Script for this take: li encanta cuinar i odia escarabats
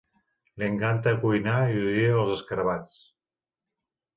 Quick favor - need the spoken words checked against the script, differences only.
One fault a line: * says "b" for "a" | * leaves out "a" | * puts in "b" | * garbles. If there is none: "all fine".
* puts in "els"